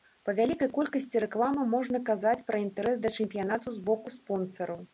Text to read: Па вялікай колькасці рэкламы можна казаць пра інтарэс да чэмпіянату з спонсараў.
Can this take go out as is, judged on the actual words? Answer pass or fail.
fail